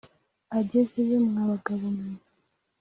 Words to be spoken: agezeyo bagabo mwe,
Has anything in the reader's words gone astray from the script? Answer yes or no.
yes